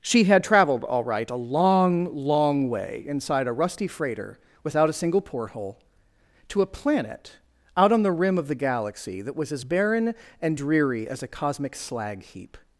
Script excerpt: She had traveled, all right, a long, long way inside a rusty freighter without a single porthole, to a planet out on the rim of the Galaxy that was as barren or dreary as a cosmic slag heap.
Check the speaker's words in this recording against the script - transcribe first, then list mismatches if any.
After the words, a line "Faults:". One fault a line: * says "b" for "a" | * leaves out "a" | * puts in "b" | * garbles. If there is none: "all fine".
She had traveled, all right, a long, long way inside a rusty freighter without a single porthole, to a planet out on the rim of the Galaxy that was as barren and dreary as a cosmic slag heap.
Faults:
* says "and" for "or"